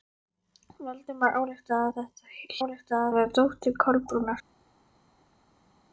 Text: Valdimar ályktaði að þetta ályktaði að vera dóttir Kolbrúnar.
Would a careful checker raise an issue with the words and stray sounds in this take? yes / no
no